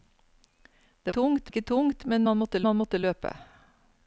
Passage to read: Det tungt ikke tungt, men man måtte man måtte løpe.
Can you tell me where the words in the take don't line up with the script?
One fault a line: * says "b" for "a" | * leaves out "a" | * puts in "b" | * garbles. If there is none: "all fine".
all fine